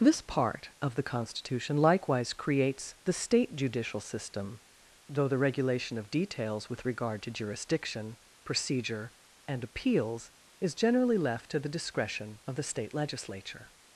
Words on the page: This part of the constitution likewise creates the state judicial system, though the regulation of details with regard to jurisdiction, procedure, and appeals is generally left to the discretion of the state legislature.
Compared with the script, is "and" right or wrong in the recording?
right